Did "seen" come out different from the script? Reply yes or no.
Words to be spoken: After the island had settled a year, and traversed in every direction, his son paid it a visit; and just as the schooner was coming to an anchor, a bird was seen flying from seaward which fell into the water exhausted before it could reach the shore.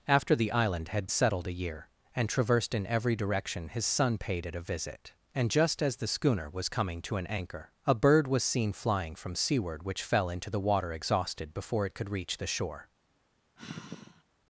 no